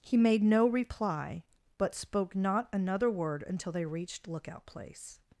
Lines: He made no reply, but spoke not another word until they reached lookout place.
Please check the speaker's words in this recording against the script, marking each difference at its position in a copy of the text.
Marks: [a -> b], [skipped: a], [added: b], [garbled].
He made no reply, but spoke not another word until they reached lookout place.